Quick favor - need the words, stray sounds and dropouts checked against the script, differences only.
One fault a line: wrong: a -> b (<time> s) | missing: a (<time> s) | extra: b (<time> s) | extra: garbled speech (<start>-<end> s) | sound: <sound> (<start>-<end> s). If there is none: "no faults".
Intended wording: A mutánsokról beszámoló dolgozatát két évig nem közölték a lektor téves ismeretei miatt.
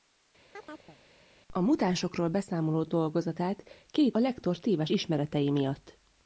sound: chirp (0.5-1.0 s)
missing: évig nem közölték (4.2 s)